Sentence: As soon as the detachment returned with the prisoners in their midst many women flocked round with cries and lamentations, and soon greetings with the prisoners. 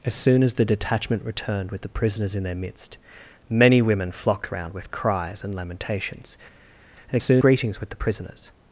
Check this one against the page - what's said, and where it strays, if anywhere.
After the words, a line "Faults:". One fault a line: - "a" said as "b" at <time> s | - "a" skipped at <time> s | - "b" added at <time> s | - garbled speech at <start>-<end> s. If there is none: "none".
As soon as the detachment returned with the prisoners in their midst many women flocked round with cries and lamentations, and soon greetings with the prisoners.
Faults:
none